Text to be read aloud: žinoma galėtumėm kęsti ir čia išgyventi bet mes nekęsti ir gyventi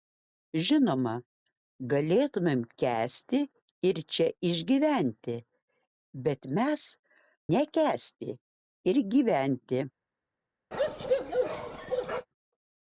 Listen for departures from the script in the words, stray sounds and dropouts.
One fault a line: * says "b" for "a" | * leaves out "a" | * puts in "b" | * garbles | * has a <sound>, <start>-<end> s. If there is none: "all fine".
* has a bark, 10.7-12.3 s